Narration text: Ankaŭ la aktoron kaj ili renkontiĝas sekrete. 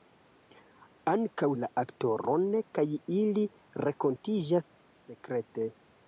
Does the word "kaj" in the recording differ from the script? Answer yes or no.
no